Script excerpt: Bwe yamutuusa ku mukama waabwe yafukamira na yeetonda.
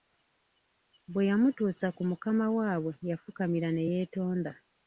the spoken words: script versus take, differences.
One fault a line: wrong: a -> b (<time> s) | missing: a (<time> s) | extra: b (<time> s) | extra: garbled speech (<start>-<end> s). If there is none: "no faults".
wrong: na -> ne (3.7 s)